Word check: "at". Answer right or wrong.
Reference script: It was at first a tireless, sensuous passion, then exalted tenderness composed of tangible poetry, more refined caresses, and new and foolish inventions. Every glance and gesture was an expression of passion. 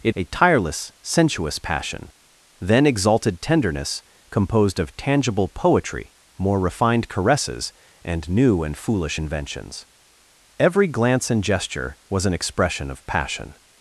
wrong